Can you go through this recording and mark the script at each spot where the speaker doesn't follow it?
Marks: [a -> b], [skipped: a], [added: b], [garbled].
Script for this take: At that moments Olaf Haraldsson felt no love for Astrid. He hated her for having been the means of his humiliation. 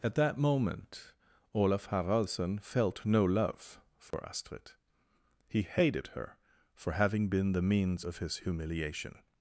At that [moments -> moment] Olaf Haraldsson felt no love for Astrid. He hated her for having been the means of his humiliation.